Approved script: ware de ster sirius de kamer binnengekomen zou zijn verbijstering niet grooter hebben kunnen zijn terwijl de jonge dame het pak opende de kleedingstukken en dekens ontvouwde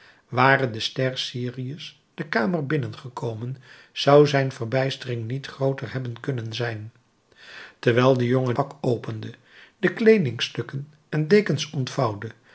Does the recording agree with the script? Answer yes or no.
no